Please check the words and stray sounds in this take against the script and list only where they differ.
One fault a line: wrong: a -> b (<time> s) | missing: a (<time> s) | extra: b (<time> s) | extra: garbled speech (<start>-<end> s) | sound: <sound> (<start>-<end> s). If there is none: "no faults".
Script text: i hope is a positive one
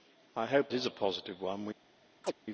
sound: chirp (2.2-2.3 s)